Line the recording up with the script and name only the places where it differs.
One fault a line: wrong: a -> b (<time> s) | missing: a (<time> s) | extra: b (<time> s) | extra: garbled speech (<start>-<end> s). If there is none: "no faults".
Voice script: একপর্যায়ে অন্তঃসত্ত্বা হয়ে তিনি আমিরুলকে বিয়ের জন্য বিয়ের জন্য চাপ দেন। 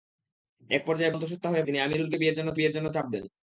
no faults